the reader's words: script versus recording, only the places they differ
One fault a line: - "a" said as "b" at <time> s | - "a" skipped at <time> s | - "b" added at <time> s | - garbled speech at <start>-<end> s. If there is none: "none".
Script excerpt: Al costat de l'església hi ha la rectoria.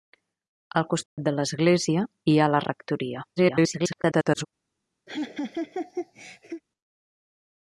- garbled speech at 3.4-4.5 s